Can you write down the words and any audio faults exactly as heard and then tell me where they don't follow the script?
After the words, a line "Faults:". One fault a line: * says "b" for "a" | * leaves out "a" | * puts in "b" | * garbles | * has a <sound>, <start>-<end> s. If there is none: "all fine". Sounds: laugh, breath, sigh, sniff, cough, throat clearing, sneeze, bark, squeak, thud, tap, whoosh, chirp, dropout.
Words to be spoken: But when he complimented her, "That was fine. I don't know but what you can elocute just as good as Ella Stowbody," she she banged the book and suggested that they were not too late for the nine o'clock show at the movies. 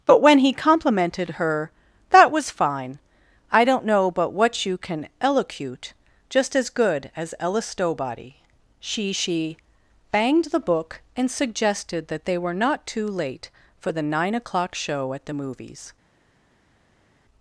But when he complimented her, "That was fine. I don't know but what you can elocute just as good as Ella Stowbody," she she banged the book and suggested that they were not too late for the nine o'clock show at the movies.
Faults:
all fine